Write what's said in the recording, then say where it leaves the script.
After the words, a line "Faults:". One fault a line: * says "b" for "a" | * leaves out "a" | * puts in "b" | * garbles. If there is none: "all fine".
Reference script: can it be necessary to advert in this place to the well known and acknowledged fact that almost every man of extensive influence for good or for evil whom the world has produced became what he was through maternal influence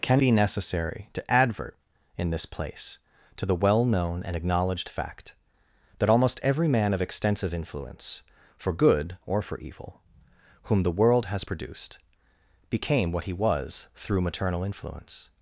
can be necessary to advert in this place to the well known and acknowledged fact that almost every man of extensive influence for good or for evil whom the world has produced became what he was through maternal influence
Faults:
* leaves out "it"